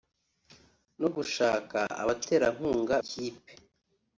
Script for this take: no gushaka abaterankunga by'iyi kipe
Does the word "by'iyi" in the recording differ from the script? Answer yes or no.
yes